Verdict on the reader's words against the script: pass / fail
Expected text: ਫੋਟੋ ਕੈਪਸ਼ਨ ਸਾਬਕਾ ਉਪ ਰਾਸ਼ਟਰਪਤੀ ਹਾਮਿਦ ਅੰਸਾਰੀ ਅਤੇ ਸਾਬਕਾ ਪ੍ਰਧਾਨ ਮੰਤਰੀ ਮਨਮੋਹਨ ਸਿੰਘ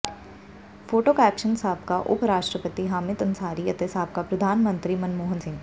pass